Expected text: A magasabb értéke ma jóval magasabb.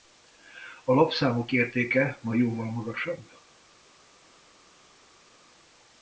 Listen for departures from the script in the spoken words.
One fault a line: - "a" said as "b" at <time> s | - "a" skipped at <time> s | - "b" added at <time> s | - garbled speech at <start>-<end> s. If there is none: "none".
- "magasabb" said as "lapszámok" at 0.9 s